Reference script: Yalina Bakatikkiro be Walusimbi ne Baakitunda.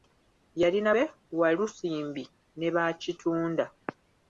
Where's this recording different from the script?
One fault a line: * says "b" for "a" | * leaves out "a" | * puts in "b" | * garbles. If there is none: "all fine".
* leaves out "Bakatikkiro"